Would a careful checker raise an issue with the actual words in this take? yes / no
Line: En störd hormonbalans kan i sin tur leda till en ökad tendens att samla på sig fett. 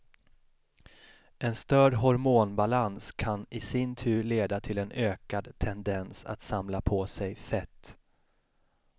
no